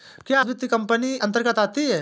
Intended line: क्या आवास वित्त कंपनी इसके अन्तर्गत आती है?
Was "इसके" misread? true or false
true